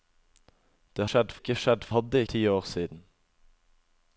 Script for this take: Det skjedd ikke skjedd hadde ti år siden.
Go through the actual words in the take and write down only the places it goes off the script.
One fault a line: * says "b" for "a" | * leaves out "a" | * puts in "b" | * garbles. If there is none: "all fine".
all fine